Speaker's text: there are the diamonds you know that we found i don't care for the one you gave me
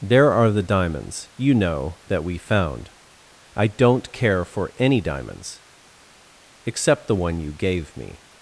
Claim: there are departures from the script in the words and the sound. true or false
true